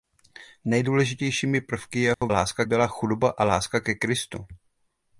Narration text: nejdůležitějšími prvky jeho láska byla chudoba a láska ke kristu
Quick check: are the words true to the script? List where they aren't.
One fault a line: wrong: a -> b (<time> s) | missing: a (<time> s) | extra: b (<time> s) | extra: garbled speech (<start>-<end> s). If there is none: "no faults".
no faults